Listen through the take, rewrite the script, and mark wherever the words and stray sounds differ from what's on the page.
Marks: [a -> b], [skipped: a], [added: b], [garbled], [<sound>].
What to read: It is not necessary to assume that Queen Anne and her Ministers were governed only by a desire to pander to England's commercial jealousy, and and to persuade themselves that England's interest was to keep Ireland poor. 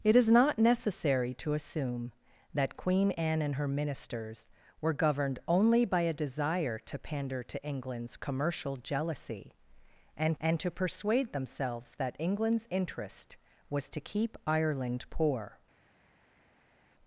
It is not necessary to assume that Queen Anne and her Ministers were governed only by a desire to pander to England's commercial jealousy, and and to persuade themselves that England's interest was to keep Ireland poor.